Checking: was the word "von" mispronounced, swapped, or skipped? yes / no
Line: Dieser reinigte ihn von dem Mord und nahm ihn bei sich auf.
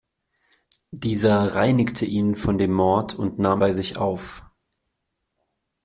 no